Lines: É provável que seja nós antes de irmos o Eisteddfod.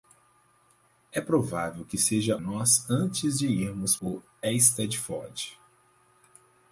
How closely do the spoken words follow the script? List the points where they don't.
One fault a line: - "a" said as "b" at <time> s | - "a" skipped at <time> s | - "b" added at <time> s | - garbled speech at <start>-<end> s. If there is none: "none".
none